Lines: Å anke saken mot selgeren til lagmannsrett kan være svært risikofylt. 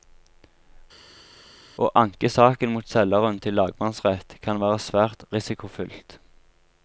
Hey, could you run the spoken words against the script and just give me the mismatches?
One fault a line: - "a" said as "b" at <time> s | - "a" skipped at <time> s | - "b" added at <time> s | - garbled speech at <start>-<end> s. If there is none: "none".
none